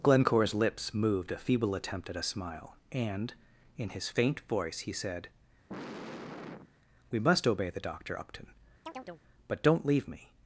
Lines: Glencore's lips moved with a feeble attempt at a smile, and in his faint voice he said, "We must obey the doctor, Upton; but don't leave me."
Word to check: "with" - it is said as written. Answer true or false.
false